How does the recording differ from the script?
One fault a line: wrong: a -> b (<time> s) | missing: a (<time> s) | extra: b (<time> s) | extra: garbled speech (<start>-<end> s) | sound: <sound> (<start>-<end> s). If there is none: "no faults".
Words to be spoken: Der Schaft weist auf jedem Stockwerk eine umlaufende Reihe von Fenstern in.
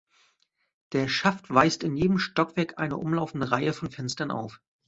wrong: auf -> in (1.8 s)
wrong: in -> auf (4.3 s)